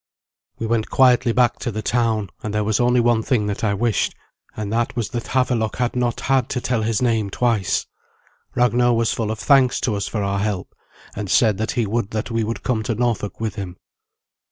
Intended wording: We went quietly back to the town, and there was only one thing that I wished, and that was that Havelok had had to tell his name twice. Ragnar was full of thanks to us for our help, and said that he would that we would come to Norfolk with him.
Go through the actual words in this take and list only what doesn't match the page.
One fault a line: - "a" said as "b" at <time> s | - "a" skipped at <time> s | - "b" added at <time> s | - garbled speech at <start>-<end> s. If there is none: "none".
- "not" added at 6.0 s